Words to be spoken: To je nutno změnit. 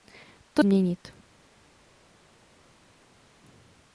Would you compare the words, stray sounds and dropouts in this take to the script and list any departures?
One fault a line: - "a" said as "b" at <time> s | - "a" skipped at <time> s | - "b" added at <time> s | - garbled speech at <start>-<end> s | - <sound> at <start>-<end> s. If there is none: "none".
- "je nutno" skipped at 0.6 s